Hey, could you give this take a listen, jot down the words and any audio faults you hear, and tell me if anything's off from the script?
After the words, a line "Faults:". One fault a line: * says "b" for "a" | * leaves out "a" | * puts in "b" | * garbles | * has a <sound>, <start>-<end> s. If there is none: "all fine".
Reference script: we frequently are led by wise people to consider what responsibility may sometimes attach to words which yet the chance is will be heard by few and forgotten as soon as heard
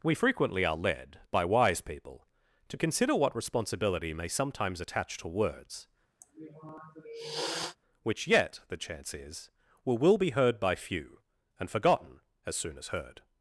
we frequently are led by wise people to consider what responsibility may sometimes attach to words which yet the chance is will will be heard by few and forgotten as soon as heard
Faults:
* has a sniff, 6.2-7.8 s
* puts in "will"